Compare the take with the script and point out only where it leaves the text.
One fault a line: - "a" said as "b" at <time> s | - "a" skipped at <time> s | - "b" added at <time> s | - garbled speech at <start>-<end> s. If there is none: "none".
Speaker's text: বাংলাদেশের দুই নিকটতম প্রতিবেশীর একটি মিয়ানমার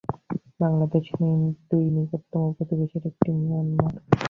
none